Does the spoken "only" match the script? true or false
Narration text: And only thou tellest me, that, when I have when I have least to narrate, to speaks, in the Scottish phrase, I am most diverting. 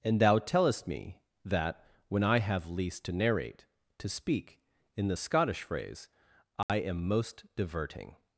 false